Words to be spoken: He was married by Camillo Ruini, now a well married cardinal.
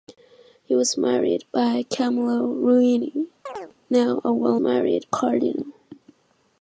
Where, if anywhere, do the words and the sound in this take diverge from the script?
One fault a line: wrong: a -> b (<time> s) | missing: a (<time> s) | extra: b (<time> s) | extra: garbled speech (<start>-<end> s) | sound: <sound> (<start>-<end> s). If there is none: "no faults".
sound: chirp (3.5-3.7 s)